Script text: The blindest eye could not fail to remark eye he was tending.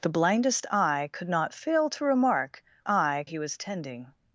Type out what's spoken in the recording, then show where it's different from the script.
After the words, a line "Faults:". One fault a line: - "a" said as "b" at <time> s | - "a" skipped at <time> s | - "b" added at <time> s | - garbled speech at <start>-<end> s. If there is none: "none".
The blindest eye could not fail to remark eye he was tending.
Faults:
none